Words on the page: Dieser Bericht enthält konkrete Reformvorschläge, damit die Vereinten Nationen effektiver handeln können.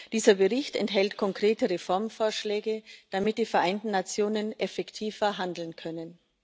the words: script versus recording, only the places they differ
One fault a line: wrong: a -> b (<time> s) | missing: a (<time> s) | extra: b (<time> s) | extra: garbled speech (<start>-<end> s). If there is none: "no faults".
no faults